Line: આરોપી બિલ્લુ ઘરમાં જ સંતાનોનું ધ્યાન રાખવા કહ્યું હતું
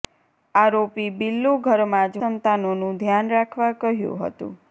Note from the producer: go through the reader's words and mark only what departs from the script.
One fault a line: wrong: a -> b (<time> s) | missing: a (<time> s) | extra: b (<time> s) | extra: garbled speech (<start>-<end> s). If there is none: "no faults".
no faults